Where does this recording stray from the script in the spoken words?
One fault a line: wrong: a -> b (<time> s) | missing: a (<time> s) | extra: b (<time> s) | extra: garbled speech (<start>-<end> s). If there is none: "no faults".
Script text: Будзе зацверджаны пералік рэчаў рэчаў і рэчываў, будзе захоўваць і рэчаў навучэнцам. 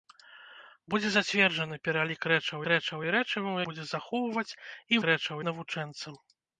no faults